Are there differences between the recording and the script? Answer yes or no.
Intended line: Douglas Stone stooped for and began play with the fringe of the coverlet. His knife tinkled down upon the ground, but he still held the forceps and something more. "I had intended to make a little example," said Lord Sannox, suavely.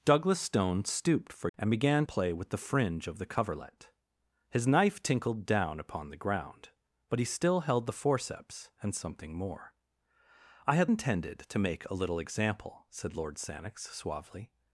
no